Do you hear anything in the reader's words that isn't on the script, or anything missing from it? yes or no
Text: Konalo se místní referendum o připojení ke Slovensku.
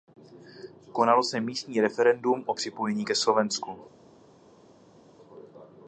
no